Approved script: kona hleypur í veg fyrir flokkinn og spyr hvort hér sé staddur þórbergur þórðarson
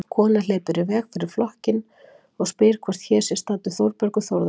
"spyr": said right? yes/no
yes